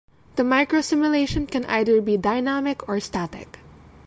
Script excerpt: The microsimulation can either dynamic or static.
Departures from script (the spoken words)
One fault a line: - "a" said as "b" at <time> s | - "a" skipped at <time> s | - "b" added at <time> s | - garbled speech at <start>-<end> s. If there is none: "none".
- "be" added at 2.0 s